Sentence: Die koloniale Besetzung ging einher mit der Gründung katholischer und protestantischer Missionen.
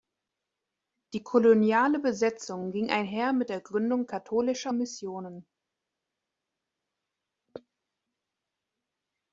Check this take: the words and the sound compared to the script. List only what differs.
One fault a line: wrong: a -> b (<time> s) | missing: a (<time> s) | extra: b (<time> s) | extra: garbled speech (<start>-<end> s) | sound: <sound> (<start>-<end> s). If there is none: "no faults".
missing: und protestantischer (4.7 s)